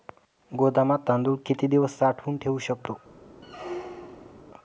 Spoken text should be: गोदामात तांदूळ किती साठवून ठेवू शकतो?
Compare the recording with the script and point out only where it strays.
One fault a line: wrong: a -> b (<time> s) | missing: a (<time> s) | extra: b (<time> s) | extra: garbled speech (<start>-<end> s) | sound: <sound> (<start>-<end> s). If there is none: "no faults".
extra: दिवस (1.7 s)
sound: squeak (3.4-4.4 s)